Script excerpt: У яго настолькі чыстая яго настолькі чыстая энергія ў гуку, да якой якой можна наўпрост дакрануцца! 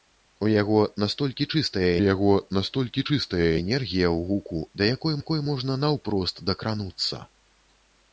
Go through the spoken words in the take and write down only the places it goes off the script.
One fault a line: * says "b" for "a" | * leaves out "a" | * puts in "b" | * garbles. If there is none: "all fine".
all fine